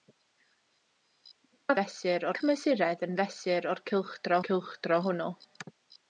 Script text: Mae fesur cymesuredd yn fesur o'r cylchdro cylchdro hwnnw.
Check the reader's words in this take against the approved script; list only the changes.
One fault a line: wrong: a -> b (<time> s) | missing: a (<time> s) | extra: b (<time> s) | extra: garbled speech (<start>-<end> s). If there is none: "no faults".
no faults